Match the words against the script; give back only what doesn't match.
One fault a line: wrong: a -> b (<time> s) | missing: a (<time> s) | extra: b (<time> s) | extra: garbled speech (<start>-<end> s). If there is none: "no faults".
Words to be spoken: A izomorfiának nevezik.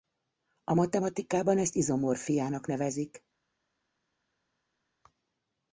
extra: matematikában ezt (0.7 s)